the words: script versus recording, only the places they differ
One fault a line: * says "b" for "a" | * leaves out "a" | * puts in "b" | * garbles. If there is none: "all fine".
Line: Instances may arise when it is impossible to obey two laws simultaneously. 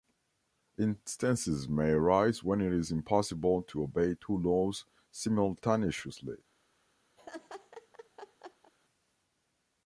all fine